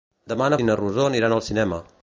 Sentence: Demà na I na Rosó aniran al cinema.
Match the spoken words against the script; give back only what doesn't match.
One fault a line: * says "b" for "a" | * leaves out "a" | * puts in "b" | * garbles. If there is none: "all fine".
all fine